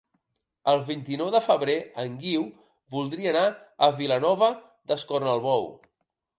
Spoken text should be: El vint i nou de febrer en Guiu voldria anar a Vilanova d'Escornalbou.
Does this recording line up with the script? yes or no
yes